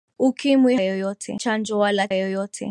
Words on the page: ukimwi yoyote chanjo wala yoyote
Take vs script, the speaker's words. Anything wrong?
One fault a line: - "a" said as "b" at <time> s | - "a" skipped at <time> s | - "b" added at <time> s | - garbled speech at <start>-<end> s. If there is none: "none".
none